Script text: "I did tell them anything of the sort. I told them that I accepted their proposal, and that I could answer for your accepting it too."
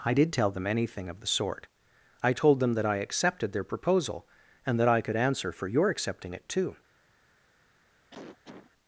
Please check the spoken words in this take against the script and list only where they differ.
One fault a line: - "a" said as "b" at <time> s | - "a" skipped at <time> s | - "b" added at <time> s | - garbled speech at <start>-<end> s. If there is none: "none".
none